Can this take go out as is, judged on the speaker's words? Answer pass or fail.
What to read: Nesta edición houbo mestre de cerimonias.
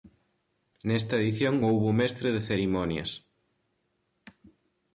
pass